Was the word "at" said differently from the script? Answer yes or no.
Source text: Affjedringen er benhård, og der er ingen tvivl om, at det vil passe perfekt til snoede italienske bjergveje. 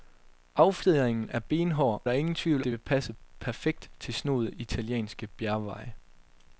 yes